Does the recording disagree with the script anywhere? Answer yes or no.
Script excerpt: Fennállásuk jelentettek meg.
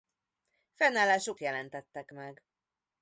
no